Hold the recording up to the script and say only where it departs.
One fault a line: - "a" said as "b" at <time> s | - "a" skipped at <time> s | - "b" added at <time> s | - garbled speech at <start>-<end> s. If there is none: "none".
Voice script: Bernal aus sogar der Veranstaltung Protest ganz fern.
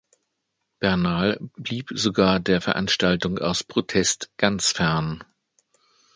- "aus" said as "blieb" at 1.6 s
- "aus" added at 3.4 s